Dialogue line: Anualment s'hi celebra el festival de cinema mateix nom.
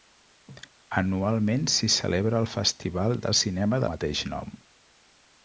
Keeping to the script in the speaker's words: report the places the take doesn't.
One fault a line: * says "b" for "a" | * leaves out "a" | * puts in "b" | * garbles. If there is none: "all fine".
all fine